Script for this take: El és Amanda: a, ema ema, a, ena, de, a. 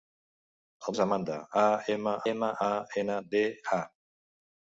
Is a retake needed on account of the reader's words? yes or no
no